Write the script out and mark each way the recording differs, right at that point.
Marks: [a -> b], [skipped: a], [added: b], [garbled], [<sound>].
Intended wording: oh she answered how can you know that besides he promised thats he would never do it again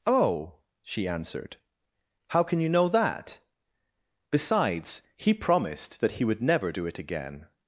oh she answered how can you know that besides he promised [thats -> that] he would never do it again